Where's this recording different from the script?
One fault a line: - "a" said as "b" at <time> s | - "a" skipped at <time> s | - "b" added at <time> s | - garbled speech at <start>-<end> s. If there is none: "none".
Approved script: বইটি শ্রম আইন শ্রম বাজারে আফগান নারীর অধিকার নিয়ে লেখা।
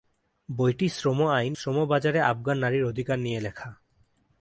none